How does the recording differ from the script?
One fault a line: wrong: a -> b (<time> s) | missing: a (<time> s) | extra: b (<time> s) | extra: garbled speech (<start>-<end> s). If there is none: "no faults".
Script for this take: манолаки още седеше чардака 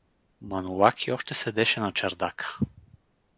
extra: на (1.8 s)